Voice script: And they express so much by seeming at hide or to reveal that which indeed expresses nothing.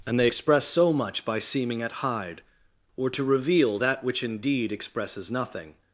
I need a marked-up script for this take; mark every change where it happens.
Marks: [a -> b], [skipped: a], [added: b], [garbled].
And they express so much by seeming at hide or to reveal that which indeed expresses nothing.